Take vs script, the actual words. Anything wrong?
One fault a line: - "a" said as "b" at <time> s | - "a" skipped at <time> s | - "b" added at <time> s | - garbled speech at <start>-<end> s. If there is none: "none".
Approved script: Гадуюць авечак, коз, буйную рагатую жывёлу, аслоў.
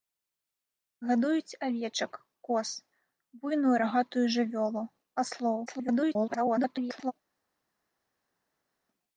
- garbled speech at 5.7-7.1 s